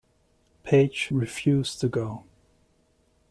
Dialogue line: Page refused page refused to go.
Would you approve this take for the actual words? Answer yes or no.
no